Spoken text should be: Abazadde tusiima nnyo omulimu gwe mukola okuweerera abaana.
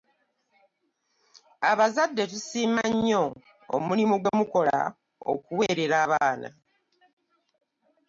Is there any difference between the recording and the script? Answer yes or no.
no